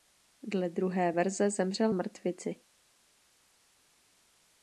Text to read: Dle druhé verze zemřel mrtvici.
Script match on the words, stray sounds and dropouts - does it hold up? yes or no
yes